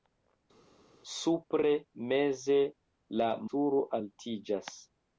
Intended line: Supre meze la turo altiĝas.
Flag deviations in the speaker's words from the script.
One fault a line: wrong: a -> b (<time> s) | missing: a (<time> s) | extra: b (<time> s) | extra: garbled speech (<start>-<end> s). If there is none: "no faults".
no faults